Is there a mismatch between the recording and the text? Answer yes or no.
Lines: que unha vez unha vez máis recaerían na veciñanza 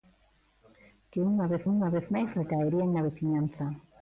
no